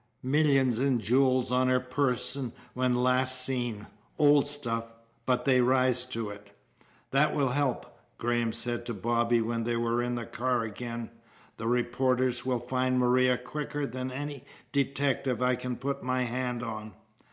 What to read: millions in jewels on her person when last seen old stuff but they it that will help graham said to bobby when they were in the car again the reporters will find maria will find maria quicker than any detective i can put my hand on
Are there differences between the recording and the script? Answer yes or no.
yes